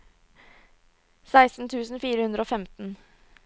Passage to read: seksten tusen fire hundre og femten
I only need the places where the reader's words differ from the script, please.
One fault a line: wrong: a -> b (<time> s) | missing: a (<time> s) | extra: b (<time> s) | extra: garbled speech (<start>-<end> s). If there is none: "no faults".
no faults